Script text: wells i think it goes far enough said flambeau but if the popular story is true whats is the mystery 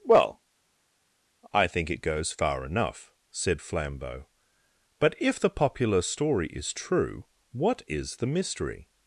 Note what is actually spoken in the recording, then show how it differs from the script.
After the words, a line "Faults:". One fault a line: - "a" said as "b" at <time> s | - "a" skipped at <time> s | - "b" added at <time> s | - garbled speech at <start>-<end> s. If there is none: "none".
well i think it goes far enough said flambeau but if the popular story is true what is the mystery
Faults:
- "wells" said as "well" at 0.0 s
- "whats" said as "what" at 7.5 s